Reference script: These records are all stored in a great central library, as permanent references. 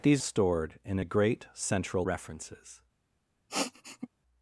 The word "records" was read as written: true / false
false